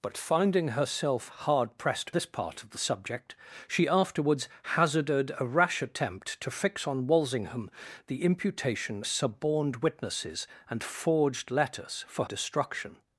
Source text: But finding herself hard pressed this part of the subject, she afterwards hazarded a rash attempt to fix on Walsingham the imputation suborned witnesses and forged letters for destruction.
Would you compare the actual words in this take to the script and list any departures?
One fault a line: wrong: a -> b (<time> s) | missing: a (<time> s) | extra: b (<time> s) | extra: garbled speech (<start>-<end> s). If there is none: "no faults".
no faults